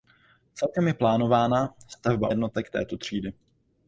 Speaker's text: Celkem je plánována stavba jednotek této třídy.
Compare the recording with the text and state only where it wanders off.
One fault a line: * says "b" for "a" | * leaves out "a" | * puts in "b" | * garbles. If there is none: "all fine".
all fine